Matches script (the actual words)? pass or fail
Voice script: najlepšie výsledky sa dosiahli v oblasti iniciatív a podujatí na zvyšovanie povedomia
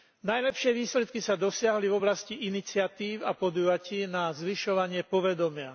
pass